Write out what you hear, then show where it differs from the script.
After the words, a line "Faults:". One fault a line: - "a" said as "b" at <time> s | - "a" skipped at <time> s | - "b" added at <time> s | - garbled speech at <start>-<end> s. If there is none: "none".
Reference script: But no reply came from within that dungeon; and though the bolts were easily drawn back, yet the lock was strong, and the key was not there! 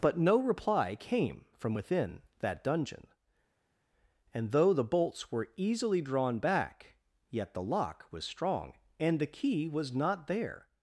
But no reply came from within that dungeon; and though the bolts were easily drawn back, yet the lock was strong, and the key was not there!
Faults:
none